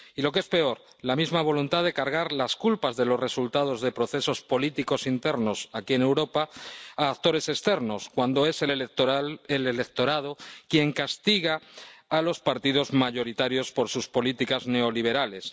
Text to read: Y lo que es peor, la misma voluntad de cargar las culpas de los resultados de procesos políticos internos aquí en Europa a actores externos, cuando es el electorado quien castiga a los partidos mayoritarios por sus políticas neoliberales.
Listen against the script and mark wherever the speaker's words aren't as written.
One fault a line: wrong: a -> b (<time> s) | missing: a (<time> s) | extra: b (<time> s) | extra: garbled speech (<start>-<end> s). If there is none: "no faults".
no faults